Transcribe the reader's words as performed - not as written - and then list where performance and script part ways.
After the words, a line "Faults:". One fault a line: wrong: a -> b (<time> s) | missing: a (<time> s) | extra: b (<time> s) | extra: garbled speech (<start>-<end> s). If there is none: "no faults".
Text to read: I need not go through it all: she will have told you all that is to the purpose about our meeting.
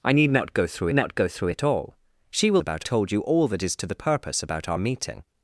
I need not go through not go through it all: she will about told you all that is to the purpose about our meeting.
Faults:
extra: not go through (0.9 s)
wrong: have -> about (2.6 s)